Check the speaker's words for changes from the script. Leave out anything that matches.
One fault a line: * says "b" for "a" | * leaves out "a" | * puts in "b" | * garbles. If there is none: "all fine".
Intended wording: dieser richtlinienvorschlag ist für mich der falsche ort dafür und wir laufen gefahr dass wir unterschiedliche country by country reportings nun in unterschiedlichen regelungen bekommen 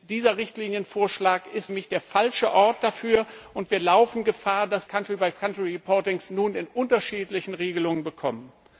* leaves out "für"
* leaves out "wir unterschiedliche"